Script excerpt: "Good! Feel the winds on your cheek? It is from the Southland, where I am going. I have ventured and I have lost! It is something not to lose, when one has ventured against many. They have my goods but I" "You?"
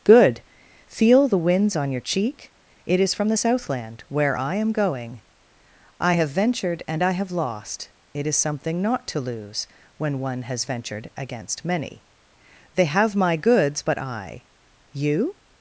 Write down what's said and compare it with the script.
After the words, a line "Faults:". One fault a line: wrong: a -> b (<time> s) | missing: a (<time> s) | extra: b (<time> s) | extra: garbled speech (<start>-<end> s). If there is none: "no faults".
"Good! Feel the winds on your cheek? It is from the Southland, where I am going. I have ventured and I have lost! It is something not to lose, when one has ventured against many. They have my goods but I" "You?"
Faults:
no faults